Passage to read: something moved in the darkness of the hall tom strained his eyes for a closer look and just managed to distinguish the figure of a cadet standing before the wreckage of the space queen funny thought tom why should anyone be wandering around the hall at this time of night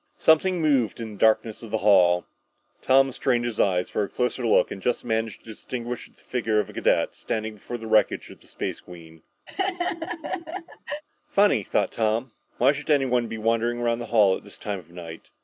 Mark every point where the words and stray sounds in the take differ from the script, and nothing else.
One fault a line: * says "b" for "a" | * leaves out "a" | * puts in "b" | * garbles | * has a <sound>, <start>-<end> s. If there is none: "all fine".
* has a laugh, 9.5-11.0 s